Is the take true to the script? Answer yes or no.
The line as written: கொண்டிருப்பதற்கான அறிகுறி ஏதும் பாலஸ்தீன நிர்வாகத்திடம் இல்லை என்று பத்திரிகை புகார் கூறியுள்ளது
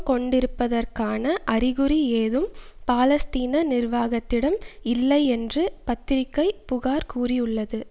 yes